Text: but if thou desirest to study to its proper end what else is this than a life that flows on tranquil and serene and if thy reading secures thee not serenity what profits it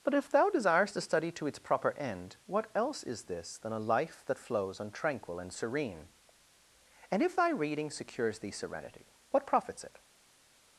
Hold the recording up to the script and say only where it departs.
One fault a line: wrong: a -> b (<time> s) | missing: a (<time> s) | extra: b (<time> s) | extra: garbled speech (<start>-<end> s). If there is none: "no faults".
missing: not (8.5 s)